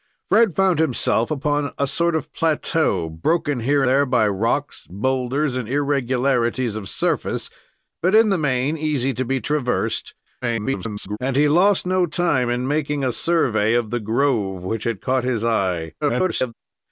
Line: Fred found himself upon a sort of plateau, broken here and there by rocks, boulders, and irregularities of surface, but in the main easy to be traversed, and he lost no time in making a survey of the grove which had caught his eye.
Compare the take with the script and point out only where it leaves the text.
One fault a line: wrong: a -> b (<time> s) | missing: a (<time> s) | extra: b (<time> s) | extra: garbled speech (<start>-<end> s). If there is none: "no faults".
missing: and (3.8 s)
extra: garbled speech (10.4-11.2 s)
extra: garbled speech (16.0-16.5 s)